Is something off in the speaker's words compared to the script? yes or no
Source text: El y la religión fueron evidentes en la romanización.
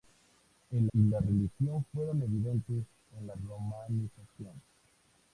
no